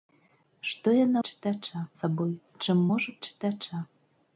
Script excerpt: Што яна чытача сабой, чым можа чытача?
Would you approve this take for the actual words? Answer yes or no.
yes